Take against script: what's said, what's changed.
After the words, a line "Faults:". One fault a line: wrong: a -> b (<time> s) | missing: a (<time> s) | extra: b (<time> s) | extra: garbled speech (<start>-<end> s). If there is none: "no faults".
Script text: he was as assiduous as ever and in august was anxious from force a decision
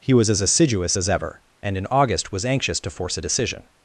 he was as assiduous as ever and in august was anxious to force a decision
Faults:
wrong: from -> to (2.8 s)